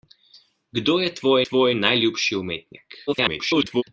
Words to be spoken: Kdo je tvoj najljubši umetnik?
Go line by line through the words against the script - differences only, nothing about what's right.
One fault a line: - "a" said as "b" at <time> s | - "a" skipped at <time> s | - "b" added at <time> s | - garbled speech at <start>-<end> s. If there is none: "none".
- "tvoj" added at 1.4 s
- garbled speech at 3.1-3.8 s